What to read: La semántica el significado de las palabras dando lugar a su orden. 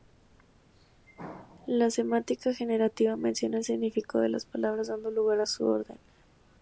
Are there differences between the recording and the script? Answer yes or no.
yes